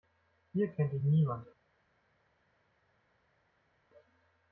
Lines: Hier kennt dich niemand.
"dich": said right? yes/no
yes